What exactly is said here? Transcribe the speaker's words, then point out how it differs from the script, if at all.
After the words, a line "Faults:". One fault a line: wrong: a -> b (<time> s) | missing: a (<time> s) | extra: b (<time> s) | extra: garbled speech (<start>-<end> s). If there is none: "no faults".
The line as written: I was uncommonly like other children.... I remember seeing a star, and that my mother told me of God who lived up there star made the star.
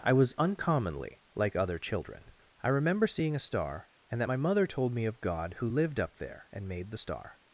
I was uncommonly like other children.... I remember seeing a star, and that my mother told me of God who lived up there and made the star.
Faults:
wrong: star -> and (6.5 s)